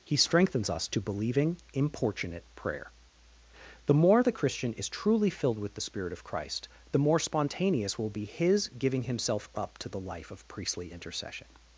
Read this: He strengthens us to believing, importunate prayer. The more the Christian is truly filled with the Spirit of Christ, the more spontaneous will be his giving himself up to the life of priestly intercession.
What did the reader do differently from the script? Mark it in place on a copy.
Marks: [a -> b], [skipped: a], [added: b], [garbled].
He strengthens us to believing, importunate prayer. The more the Christian is truly filled with the Spirit of Christ, the more spontaneous will be his giving himself up to the life of priestly intercession.